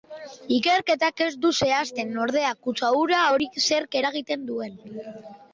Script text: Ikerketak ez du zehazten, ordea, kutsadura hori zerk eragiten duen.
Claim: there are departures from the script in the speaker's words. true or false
false